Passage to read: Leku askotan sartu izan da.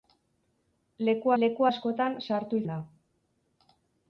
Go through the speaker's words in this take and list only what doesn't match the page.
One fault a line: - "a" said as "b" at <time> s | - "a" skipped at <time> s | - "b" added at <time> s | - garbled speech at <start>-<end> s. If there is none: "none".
- "leku" added at 1.4 s
- "izan" skipped at 2.6 s